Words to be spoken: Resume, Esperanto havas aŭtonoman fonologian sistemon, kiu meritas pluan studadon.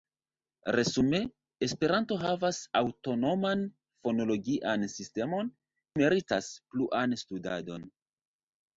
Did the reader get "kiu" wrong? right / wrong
wrong